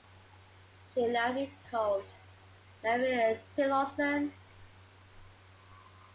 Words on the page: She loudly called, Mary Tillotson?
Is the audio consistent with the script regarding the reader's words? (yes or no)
yes